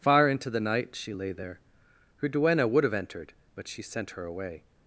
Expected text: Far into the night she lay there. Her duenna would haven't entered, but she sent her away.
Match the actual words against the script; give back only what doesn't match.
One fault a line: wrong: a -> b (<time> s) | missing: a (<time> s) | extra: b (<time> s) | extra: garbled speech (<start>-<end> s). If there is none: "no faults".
wrong: haven't -> have (2.8 s)